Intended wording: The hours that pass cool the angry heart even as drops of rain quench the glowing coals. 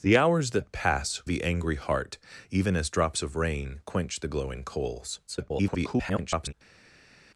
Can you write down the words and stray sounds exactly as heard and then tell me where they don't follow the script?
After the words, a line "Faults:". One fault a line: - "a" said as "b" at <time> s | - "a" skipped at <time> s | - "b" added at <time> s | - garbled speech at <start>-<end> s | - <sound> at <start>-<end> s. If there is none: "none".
The hours that pass the angry heart even as drops of rain quench the glowing coals. [garbled]
Faults:
- "cool" skipped at 1.2 s
- garbled speech at 5.3-6.5 s